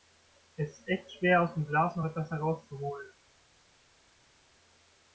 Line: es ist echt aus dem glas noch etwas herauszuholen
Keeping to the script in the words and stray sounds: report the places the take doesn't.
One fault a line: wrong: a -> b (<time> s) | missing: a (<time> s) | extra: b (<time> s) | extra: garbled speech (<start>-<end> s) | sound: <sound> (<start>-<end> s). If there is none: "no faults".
extra: schwer (1.1 s)